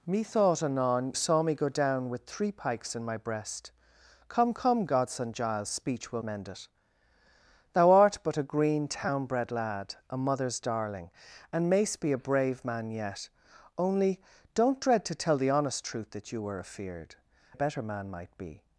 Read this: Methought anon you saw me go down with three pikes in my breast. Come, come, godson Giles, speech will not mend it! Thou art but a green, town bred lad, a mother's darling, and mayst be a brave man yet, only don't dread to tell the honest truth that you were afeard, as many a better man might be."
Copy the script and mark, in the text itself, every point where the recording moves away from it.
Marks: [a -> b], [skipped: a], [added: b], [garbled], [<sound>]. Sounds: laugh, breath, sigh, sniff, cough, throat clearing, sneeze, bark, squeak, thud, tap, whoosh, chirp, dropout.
Methought anon [skipped: you] saw me go down with three pikes in my breast. Come, come, godson Giles, speech will [skipped: not] mend it! Thou art but a green, town bred lad, a mother's darling, and mayst be a brave man yet, only don't dread to tell the honest truth that you were afeard, [skipped: as many] a better man might be."